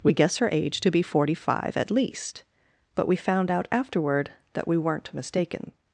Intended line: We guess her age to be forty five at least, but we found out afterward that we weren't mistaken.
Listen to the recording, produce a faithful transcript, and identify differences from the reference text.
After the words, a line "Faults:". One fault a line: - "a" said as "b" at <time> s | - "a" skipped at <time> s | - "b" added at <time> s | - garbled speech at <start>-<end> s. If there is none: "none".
We guess her age to be forty five at least, but we found out afterward that we weren't mistaken.
Faults:
none